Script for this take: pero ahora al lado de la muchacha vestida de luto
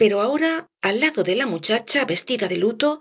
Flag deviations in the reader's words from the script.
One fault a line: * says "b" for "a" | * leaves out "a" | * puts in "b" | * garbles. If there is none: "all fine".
all fine